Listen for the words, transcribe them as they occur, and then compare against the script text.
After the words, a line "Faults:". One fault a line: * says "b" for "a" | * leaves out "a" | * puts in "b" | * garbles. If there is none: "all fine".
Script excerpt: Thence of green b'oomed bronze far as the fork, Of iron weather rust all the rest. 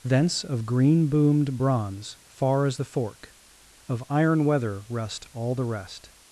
Thence of green b'oomed bronze far as the fork, Of iron weather rust all the rest.
Faults:
all fine